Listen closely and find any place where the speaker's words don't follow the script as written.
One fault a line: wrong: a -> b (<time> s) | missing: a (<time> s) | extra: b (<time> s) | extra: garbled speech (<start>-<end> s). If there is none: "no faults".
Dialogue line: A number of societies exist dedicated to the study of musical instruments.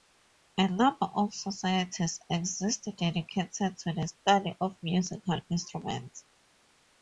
no faults